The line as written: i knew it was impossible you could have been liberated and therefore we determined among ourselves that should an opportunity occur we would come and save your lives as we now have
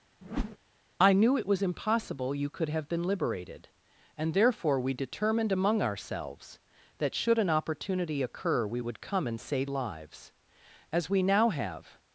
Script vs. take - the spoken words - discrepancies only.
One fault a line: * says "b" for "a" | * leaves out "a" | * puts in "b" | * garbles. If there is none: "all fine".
* leaves out "your"